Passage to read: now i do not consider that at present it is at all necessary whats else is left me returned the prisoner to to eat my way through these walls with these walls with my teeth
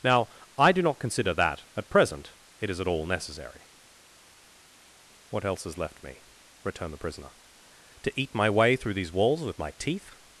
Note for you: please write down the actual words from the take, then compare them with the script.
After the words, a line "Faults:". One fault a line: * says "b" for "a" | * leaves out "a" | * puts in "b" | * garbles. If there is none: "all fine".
now i do not consider that at present it is at all necessary what else is left me returned the prisoner to eat my way through these walls with my teeth
Faults:
* says "what" for "whats"
* leaves out "to"
* leaves out "these walls with"